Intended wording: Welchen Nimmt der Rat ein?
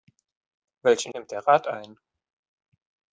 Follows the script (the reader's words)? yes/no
yes